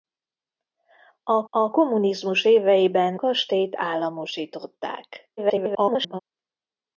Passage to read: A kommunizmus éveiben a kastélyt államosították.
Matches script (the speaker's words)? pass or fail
fail